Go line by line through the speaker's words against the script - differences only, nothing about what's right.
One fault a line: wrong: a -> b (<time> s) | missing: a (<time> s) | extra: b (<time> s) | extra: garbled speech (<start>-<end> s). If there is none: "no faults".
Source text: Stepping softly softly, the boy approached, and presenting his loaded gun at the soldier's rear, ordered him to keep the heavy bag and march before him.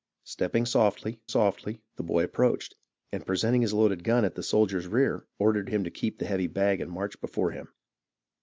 no faults